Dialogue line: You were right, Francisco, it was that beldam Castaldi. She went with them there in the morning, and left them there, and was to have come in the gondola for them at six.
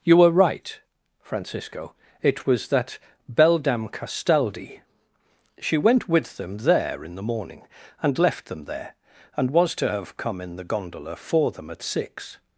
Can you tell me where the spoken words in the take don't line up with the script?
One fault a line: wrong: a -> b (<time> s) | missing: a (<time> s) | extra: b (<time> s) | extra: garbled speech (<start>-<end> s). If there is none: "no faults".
no faults